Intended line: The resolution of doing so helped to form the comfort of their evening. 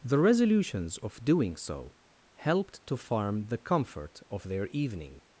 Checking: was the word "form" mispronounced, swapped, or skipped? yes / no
yes